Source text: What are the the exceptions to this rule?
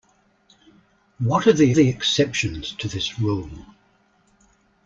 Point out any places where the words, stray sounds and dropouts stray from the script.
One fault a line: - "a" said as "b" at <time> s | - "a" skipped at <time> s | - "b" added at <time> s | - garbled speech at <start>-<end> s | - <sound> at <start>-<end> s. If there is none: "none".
none